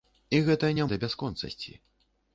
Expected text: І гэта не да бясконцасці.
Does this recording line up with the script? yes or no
yes